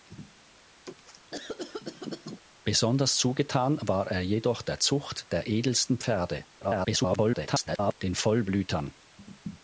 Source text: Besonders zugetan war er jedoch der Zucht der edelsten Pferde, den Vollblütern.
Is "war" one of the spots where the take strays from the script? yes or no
no